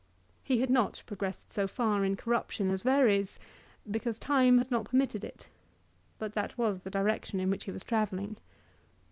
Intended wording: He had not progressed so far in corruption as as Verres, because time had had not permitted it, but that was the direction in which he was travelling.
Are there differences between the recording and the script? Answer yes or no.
yes